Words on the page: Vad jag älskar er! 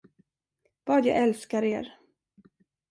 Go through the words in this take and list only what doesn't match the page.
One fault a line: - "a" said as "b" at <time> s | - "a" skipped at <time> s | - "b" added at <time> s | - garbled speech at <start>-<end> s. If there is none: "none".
none